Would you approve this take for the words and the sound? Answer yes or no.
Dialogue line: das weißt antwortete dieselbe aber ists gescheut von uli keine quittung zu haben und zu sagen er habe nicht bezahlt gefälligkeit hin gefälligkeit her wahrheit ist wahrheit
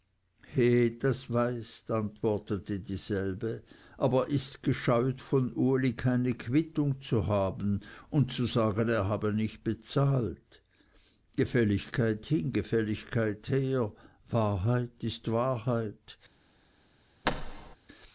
no